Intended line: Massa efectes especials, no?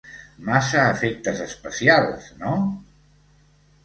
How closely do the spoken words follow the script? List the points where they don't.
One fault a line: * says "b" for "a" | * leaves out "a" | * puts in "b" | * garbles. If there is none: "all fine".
all fine